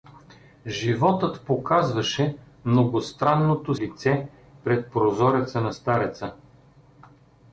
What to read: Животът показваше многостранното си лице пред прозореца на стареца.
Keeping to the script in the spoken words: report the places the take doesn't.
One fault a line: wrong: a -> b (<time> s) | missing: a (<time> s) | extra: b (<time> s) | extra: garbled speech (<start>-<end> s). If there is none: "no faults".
missing: си (3.8 s)